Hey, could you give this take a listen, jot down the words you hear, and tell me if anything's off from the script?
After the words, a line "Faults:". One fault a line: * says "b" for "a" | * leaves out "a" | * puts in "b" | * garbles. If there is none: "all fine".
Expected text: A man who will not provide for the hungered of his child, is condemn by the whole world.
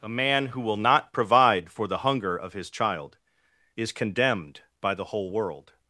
A man who will not provide for the hunger of his child, is condemned by the whole world.
Faults:
* says "hunger" for "hungered"
* says "condemned" for "condemn"